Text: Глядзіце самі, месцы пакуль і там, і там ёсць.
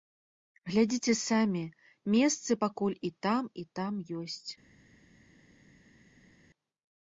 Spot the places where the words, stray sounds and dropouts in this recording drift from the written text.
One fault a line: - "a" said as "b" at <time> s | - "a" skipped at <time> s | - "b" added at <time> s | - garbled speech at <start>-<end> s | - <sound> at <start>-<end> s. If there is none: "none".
none